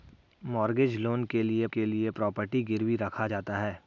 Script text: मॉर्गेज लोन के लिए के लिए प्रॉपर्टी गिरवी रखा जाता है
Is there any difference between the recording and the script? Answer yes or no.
no